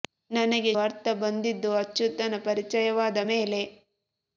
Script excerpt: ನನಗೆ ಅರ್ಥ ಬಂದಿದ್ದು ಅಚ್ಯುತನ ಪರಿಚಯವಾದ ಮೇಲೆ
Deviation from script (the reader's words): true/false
false